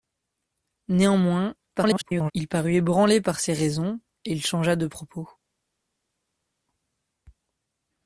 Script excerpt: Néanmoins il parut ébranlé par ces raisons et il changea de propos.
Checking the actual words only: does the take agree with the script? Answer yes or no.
no